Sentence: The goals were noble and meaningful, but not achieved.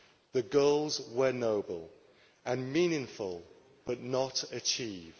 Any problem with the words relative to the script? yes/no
no